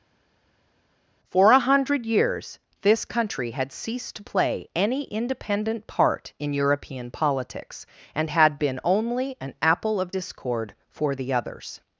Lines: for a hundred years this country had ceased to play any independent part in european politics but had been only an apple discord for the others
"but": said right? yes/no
no